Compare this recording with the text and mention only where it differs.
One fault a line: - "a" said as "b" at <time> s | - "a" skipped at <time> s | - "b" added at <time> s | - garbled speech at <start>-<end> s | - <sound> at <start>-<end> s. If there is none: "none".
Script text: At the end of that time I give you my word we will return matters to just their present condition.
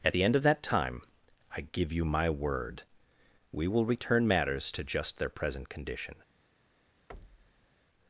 - thud at 7.1-7.7 s